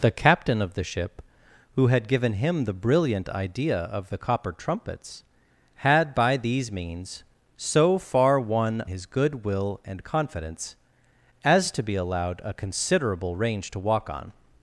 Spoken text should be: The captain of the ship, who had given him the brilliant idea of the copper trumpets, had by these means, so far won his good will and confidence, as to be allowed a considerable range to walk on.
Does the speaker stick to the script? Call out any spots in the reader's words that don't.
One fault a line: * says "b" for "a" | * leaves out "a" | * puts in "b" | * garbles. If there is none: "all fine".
all fine